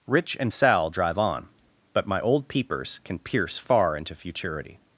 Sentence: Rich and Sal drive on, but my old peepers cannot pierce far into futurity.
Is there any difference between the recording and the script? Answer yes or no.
yes